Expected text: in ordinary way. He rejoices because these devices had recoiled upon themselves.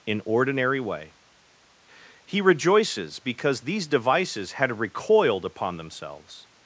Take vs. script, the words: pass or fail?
pass